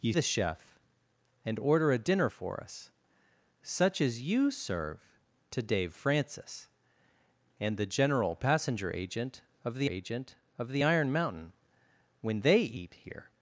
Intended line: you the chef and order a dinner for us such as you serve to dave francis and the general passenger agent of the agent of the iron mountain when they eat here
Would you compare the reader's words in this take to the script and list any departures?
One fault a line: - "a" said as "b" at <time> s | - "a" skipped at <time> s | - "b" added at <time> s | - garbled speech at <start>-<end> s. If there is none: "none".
none